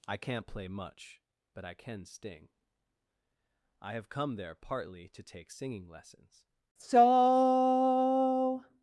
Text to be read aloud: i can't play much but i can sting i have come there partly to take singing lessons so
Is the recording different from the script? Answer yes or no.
no